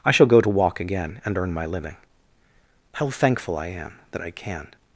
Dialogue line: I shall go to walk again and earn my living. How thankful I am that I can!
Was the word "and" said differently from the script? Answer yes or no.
no